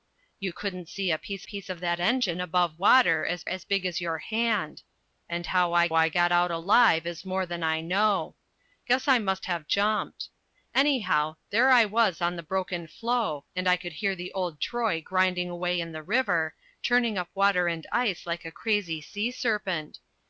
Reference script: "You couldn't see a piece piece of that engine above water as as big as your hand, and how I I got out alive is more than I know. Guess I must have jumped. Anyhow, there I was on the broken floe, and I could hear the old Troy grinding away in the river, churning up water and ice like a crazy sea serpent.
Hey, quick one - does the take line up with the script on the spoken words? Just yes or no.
yes